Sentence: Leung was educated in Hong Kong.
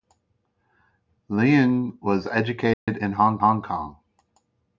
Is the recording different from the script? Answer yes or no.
yes